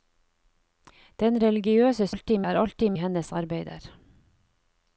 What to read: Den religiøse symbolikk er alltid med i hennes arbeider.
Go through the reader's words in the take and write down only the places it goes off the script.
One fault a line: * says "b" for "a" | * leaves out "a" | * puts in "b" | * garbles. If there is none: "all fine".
* says "alltid" for "symbolikk"
* leaves out "med"